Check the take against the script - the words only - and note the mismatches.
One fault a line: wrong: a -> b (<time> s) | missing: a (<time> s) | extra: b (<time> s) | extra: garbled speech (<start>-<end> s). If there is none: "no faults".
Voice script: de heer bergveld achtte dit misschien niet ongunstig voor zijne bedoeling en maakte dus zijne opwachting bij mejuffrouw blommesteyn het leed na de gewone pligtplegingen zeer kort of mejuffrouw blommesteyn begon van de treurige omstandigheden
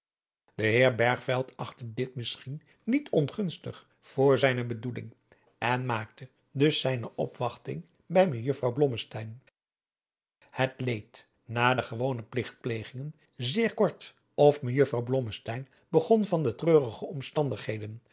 no faults